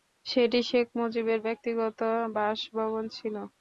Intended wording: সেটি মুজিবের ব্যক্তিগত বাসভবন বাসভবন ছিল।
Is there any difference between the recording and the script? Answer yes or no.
yes